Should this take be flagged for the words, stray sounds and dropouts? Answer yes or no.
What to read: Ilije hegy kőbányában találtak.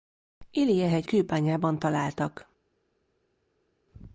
no